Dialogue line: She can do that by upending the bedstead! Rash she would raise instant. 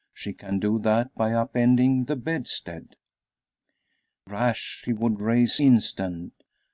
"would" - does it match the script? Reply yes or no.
yes